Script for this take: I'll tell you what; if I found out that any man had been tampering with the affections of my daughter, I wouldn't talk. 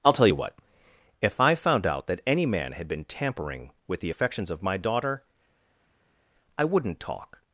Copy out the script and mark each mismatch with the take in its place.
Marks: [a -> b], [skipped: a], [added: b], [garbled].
I'll tell you what; if I found out that any man had been tampering with the affections of my daughter, I wouldn't talk.